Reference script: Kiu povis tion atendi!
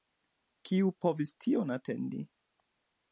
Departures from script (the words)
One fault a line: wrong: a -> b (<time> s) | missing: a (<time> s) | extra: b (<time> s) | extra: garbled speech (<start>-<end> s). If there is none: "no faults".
no faults